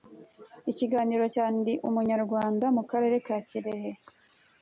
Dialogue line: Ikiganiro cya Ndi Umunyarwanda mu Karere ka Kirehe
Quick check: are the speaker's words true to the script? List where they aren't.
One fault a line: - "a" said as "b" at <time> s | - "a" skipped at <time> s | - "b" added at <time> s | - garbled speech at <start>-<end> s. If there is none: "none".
none